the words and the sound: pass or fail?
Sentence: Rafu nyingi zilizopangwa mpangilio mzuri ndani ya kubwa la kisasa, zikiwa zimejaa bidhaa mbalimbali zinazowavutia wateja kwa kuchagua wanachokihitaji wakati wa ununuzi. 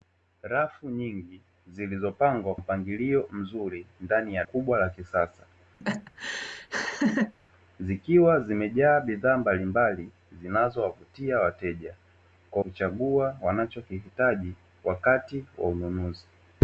fail